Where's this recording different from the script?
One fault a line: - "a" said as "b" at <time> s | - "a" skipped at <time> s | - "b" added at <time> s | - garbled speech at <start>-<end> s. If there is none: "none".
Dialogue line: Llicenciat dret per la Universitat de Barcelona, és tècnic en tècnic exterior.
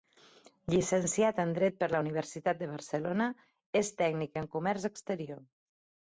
- "en" added at 1.4 s
- "tècnic" said as "comerç" at 4.5 s